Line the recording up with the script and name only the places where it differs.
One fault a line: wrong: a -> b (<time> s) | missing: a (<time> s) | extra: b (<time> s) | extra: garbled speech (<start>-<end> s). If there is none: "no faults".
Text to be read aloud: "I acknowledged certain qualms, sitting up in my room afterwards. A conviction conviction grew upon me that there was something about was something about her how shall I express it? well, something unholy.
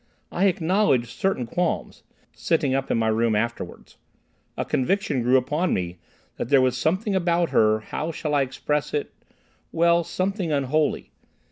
missing: conviction (5.2 s)
missing: was something about (7.5 s)